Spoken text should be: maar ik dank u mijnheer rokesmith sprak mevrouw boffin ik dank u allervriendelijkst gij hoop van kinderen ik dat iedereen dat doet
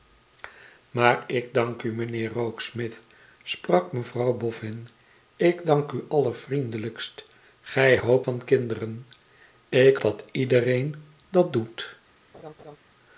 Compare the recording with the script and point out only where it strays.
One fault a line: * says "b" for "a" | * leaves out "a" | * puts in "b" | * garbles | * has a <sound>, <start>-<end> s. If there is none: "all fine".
* has a laugh, 12.3-12.8 s